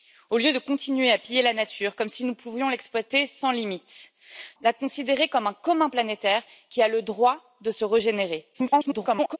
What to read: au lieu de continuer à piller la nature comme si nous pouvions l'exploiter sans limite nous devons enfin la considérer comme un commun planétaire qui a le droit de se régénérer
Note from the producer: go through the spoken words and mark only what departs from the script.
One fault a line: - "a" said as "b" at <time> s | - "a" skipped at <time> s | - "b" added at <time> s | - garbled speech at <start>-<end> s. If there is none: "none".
- "nous devons enfin" skipped at 4.1 s
- garbled speech at 8.5-9.4 s